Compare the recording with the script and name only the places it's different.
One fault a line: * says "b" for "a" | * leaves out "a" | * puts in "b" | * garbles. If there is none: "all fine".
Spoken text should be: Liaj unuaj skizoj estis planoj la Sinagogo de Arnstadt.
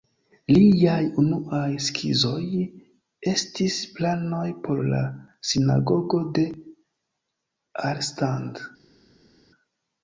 * puts in "por"